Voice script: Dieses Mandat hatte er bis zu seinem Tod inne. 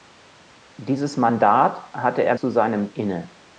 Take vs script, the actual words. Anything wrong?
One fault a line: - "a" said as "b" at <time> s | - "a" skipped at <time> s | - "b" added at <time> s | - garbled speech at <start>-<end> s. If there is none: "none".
- "bis" skipped at 2.4 s
- "Tod" skipped at 2.9 s